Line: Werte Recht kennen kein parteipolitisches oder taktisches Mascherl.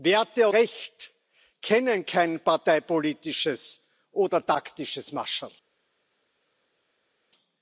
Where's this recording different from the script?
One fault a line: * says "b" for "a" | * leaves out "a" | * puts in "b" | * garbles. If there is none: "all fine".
all fine